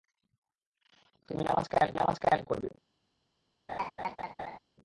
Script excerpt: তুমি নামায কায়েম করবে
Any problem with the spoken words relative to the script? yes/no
yes